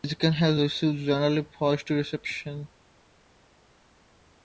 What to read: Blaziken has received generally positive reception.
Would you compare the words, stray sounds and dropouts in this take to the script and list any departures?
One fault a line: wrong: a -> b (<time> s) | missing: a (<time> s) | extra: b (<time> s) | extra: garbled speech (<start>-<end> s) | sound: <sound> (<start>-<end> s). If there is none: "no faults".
no faults